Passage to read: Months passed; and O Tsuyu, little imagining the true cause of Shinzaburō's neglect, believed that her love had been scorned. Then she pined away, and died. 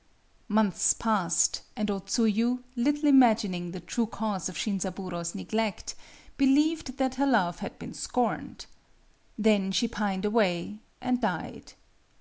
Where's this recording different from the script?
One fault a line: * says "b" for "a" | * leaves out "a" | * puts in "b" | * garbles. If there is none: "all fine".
all fine